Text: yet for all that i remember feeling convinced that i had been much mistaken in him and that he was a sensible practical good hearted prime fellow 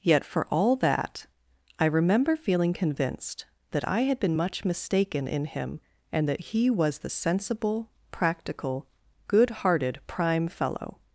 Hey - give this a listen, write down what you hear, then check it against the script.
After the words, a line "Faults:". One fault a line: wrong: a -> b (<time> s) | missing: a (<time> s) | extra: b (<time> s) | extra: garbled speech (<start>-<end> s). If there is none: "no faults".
yet for all that i remember feeling convinced that i had been much mistaken in him and that he was the sensible practical good hearted prime fellow
Faults:
wrong: a -> the (7.0 s)